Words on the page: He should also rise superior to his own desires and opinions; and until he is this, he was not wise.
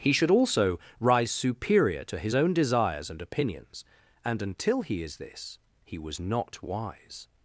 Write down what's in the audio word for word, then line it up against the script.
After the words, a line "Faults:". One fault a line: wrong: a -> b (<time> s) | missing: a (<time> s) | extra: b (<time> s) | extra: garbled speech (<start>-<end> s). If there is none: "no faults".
He should also rise superior to his own desires and opinions; and until he is this, he was not wise.
Faults:
no faults